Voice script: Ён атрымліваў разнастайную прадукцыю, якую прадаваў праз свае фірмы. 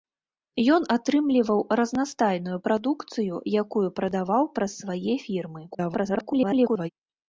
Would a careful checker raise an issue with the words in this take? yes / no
yes